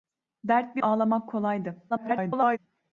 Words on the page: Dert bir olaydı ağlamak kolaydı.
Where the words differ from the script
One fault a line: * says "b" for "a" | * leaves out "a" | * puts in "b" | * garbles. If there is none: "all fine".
* leaves out "olaydı"
* garbles